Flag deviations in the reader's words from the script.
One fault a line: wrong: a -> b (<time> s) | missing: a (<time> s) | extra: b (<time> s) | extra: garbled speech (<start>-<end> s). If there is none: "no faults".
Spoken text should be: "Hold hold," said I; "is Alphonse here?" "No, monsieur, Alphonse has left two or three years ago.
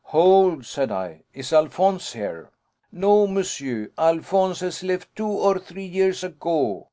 missing: hold (0.7 s)